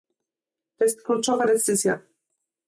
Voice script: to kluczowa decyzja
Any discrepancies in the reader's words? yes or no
yes